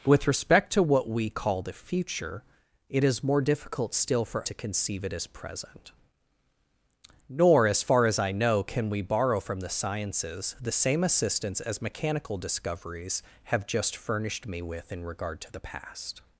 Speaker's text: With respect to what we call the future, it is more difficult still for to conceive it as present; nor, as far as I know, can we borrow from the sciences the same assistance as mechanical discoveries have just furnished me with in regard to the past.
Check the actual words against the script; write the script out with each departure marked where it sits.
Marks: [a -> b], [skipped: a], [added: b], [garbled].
With respect to what we call the future, it is more difficult still for to conceive it as present; nor, as far as I know, can we borrow from the sciences the same assistance as mechanical discoveries have just furnished me with in regard to the past.